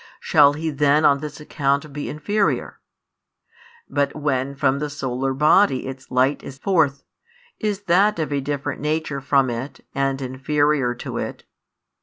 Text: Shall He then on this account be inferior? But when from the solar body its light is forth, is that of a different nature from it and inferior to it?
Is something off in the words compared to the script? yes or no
no